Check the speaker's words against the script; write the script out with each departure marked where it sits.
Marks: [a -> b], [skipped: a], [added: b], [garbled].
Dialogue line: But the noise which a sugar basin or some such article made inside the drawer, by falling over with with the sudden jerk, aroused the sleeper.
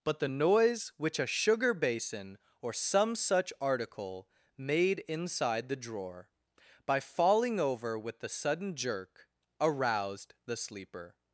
But the noise which a sugar basin or some such article made inside the drawer, by falling over with [skipped: with] the sudden jerk, aroused the sleeper.